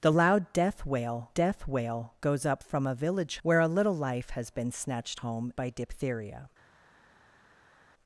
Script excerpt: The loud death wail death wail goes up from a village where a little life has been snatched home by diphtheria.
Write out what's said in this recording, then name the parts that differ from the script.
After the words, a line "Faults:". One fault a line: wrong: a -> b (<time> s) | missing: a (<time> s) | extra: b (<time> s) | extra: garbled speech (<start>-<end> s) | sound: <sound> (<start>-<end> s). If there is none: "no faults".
The loud death wail death wail goes up from a village where a little life has been snatched home by diphtheria.
Faults:
no faults